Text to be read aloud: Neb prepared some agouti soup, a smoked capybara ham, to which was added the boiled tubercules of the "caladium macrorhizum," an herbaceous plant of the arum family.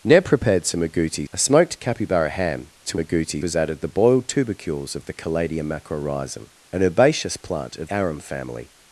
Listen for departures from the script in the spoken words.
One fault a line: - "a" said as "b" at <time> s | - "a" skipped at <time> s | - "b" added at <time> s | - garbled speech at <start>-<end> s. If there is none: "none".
- "soup" skipped at 1.3 s
- "which" said as "agouti" at 3.0 s
- "the" skipped at 7.9 s